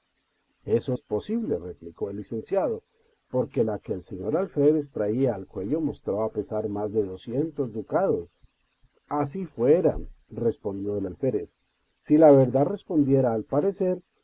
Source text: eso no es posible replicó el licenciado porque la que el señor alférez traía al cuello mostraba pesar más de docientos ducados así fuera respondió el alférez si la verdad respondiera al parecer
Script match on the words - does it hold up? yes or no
no